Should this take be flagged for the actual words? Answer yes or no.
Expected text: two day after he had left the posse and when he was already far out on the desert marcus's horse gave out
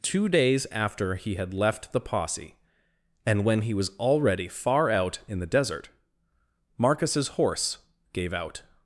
yes